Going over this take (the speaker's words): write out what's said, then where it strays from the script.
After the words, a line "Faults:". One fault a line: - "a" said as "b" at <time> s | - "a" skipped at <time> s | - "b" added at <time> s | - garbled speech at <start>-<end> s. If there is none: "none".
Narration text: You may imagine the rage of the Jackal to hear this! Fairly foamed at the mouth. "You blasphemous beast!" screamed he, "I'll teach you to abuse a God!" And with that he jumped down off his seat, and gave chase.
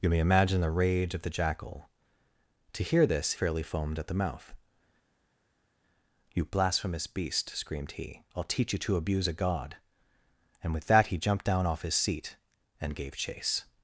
You may imagine the rage of the Jackal to hear this! Fairly foamed at the mouth. "You blasphemous beast!" screamed he, "I'll teach you to abuse a God!" And with that he jumped down off his seat, and gave chase.
Faults:
none